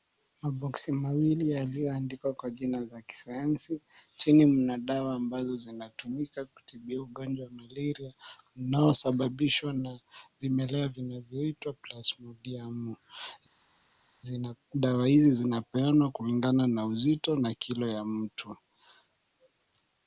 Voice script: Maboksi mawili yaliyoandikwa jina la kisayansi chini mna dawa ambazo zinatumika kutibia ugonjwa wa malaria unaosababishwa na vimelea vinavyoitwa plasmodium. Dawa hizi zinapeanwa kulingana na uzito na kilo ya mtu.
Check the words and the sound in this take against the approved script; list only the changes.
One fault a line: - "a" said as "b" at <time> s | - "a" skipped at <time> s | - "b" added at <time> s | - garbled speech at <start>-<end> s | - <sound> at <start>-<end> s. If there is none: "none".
- "kwa" added at 2.3 s